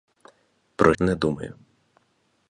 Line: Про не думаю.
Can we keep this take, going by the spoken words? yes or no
yes